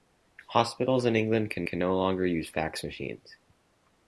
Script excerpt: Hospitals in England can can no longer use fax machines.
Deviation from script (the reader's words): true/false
false